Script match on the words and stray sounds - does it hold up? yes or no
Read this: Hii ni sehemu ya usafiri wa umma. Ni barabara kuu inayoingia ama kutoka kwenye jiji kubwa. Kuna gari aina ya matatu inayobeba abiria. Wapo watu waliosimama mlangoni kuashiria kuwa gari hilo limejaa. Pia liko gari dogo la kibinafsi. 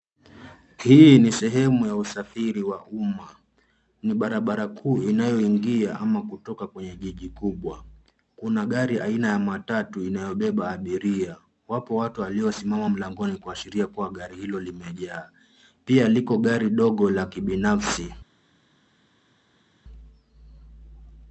yes